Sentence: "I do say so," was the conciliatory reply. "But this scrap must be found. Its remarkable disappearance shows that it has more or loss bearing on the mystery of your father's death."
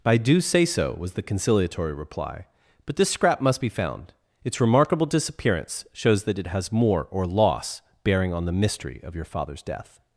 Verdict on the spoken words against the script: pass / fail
pass